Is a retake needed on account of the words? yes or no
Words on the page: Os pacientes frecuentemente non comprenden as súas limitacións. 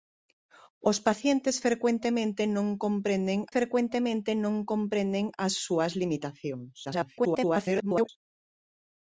yes